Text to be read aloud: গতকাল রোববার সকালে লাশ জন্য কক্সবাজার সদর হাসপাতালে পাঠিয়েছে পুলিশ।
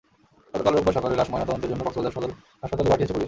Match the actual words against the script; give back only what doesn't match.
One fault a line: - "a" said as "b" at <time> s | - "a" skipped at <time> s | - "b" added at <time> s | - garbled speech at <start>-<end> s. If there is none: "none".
- "ময়নাতদন্তের" added at 1.3 s